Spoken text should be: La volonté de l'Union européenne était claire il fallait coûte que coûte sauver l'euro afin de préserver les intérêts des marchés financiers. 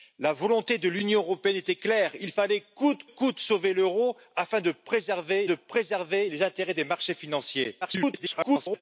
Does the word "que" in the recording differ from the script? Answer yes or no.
yes